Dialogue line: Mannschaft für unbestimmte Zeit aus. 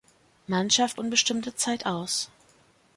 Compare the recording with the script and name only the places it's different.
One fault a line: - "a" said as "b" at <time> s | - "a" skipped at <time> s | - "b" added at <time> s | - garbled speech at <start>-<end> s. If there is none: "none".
- "für" skipped at 1.0 s